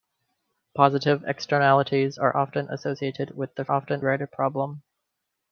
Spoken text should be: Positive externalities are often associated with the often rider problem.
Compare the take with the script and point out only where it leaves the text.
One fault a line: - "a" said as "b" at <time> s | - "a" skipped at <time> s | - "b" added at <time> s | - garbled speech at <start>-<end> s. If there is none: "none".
none